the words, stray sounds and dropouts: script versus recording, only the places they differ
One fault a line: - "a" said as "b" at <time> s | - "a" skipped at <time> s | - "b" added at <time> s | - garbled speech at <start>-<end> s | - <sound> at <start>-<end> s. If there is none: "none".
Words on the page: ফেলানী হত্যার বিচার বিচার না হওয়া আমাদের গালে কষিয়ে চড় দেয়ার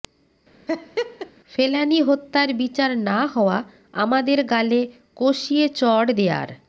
- laugh at 0.7-1.3 s
- "বিচার" skipped at 2.9 s